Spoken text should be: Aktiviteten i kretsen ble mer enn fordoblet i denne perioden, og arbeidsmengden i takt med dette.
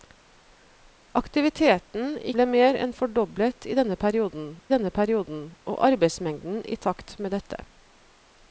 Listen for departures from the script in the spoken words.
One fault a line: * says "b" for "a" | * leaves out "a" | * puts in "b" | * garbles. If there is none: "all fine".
* leaves out "kretsen"
* puts in "denne perioden"